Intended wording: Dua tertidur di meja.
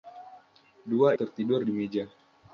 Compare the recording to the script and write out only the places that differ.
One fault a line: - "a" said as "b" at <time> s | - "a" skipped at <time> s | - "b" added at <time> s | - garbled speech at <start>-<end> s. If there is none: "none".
none